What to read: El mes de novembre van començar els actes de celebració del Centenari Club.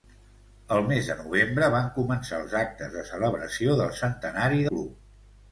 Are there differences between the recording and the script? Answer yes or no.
no